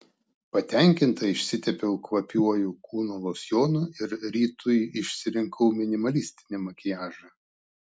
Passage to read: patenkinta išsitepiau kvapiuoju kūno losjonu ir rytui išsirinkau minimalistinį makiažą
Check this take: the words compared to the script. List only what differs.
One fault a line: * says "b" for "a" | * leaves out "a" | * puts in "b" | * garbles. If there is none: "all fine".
all fine